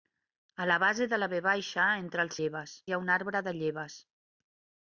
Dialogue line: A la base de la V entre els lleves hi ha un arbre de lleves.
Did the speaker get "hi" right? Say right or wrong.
right